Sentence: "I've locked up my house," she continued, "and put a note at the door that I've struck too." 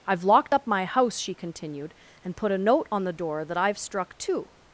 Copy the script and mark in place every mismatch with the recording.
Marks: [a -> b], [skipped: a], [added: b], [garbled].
"I've locked up my house," she continued, "and put a note [at -> on] the door that I've struck too."